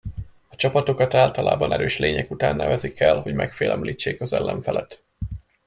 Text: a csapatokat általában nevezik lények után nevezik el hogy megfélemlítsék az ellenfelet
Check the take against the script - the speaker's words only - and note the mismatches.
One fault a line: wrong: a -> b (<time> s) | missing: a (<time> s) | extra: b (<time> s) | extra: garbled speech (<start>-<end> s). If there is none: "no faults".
wrong: nevezik -> erős (1.7 s)